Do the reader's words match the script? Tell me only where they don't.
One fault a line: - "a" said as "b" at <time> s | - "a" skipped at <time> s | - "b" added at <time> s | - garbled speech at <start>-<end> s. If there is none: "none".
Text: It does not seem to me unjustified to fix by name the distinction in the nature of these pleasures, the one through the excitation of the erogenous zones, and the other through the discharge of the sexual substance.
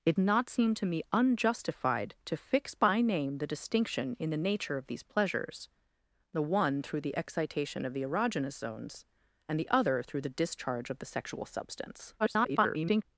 - "does" skipped at 0.1 s
- garbled speech at 12.2-13.0 s